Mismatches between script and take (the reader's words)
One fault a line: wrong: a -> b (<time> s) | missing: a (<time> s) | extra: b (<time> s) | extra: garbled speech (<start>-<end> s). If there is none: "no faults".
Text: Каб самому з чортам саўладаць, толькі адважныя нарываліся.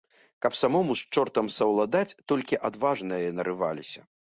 no faults